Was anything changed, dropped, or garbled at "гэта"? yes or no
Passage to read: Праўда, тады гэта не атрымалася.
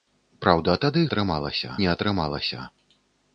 yes